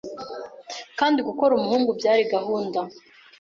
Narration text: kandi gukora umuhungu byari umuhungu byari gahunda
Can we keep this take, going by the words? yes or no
no